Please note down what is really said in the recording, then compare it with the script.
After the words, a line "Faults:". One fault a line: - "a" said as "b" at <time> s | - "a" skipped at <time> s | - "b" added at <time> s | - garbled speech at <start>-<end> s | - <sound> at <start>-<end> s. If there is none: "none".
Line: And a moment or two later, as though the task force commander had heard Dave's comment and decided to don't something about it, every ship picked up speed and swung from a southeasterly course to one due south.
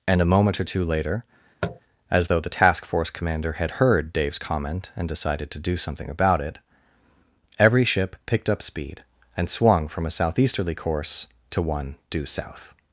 And a moment or two later, as though the task force commander had heard Dave's comment and decided to do something about it, every ship picked up speed and swung from a southeasterly course to one due south.
Faults:
- tap at 1.6-1.8 s
- "don't" said as "do" at 5.6 s